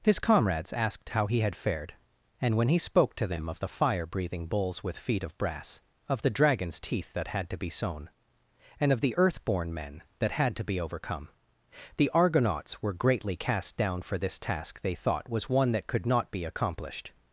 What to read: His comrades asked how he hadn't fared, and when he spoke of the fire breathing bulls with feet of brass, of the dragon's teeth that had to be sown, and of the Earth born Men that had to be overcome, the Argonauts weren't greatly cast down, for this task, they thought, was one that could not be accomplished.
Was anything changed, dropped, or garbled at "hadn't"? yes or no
yes